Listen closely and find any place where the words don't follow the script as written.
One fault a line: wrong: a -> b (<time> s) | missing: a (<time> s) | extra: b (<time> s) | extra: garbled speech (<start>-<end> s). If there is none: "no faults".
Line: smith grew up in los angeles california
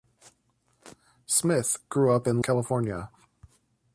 missing: los angeles (2.4 s)